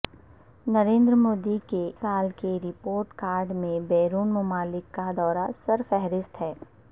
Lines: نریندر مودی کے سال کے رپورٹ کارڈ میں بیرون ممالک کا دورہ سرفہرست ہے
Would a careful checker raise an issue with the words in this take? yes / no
no